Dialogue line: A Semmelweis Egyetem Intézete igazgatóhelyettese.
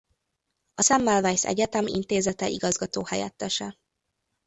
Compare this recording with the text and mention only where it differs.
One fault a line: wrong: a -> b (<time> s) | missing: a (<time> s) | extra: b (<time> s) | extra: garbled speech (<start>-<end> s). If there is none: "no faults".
no faults